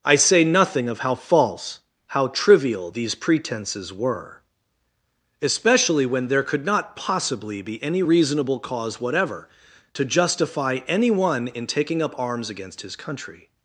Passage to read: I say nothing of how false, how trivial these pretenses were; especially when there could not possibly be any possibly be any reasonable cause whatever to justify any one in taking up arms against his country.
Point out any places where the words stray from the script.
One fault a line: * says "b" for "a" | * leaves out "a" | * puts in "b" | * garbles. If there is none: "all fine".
* leaves out "possibly be any"